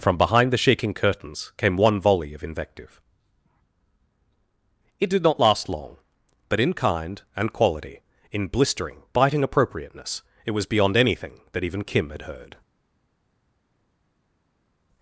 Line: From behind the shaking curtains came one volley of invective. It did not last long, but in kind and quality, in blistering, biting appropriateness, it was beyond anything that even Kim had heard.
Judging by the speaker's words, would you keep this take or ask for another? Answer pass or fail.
pass